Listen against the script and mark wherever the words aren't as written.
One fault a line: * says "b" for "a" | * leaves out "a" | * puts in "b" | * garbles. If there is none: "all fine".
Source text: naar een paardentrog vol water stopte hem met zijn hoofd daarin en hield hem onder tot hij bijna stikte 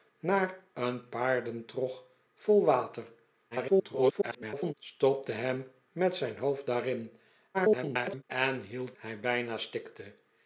* garbles
* garbles
* leaves out "hem onder tot"